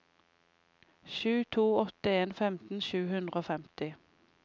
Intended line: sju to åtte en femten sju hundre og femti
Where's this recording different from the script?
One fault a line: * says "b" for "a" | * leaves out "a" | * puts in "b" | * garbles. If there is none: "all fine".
all fine